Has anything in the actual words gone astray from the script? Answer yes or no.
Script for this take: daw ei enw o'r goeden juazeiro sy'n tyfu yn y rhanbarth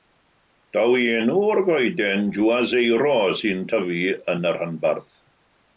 no